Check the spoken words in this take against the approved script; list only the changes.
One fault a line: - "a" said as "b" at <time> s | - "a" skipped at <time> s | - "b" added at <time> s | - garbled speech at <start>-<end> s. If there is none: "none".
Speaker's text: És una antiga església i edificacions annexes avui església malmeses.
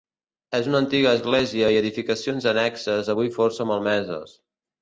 - "església" said as "força" at 3.4 s